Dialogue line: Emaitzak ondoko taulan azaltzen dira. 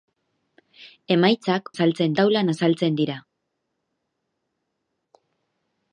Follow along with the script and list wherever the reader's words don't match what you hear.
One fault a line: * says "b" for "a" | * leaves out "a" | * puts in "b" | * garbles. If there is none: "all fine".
* says "azaltzen" for "ondoko"